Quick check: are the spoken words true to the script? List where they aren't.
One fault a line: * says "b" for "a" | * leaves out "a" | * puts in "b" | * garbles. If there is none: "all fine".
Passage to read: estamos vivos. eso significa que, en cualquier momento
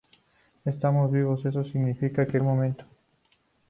* leaves out "en cualquier"